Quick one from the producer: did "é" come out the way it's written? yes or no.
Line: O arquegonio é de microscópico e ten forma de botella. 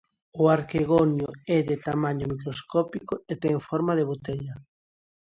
yes